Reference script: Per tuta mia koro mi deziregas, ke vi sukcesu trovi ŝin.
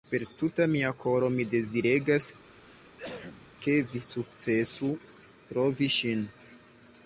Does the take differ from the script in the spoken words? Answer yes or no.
no